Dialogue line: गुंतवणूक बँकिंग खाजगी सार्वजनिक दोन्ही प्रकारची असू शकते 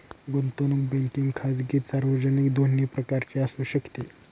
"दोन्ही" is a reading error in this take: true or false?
false